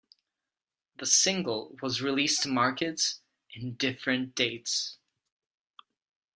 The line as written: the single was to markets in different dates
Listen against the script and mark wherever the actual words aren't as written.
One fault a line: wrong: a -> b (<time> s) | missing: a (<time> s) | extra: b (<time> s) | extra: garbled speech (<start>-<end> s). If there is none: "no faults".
extra: released (2.0 s)